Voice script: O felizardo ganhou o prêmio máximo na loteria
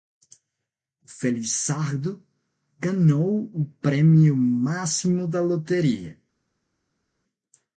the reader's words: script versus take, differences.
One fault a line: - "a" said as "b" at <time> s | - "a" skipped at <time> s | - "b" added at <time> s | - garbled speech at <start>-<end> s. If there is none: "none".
- "na" said as "da" at 5.3 s